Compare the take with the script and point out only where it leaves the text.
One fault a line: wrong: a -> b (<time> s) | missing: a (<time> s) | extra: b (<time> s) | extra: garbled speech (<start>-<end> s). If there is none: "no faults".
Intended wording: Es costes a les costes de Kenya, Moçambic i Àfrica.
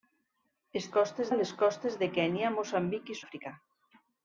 no faults